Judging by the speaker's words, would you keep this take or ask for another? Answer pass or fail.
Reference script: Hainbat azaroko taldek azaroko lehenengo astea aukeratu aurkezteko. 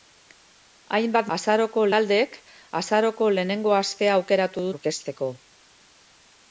pass